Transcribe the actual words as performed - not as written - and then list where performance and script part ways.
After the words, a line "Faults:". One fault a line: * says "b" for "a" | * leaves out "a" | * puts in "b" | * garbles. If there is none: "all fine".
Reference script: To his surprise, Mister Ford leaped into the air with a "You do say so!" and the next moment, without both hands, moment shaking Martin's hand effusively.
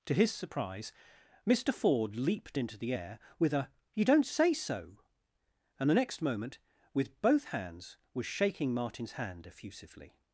To his surprise, Mister Ford leaped into the air with a "You don't say so!" and the next moment, with both hands, was shaking Martin's hand effusively.
Faults:
* says "don't" for "do"
* says "with" for "without"
* says "was" for "moment"